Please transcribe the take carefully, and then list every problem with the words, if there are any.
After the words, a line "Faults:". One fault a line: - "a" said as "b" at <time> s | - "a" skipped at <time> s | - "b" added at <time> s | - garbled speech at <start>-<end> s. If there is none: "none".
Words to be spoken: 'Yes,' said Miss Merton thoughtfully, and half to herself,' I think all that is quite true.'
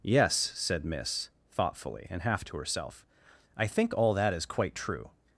'Yes,' said Miss thoughtfully, and half to herself,' I think all that is quite true.'
Faults:
- "Merton" skipped at 1.3 s